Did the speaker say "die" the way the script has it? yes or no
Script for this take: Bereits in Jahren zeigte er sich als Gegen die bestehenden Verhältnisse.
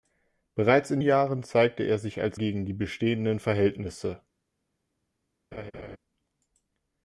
yes